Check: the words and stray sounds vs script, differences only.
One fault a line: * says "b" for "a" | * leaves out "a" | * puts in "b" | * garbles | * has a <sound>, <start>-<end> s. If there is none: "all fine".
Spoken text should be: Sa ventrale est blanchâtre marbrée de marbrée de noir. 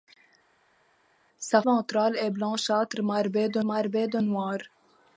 all fine